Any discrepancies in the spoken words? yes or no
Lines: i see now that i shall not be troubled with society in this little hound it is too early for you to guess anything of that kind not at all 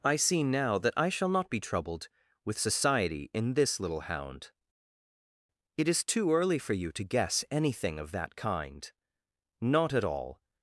no